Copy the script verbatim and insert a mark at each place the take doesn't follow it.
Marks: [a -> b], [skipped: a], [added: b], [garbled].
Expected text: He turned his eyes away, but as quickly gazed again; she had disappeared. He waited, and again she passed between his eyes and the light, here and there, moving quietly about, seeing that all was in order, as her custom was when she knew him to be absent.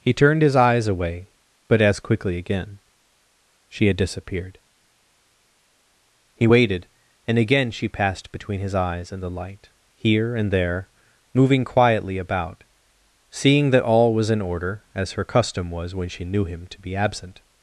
He turned his eyes away, but as quickly [skipped: gazed] again; she had disappeared. He waited, and again she passed between his eyes and the light, here and there, moving quietly about, seeing that all was in order, as her custom was when she knew him to be absent.